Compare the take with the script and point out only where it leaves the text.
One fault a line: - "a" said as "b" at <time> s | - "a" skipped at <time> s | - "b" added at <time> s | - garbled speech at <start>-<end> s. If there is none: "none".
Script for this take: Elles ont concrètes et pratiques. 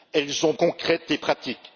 none